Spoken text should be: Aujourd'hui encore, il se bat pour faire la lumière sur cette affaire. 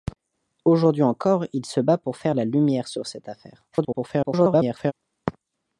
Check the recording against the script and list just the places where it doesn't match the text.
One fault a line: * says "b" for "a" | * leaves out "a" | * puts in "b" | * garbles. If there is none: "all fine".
* garbles